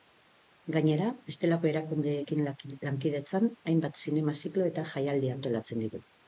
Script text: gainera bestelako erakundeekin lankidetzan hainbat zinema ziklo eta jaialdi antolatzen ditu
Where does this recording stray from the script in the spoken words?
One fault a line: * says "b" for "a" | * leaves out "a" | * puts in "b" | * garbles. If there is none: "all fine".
all fine